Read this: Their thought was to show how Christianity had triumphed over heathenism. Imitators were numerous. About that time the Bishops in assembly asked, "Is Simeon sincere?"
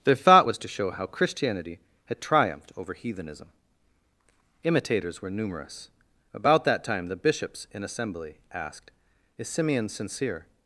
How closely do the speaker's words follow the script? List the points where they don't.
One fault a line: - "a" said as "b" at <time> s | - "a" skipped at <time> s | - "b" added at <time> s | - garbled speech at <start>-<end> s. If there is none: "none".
none